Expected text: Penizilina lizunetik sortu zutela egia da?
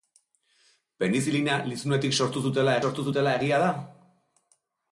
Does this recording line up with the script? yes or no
no